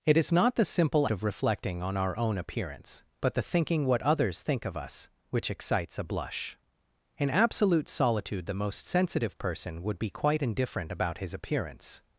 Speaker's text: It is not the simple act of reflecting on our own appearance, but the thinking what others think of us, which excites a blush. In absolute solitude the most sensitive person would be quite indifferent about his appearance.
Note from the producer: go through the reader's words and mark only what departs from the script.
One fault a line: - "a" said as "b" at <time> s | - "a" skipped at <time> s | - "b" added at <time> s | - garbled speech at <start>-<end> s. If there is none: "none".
- "act" skipped at 1.1 s